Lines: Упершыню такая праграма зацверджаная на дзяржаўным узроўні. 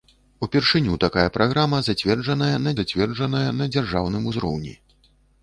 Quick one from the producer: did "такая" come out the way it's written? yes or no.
yes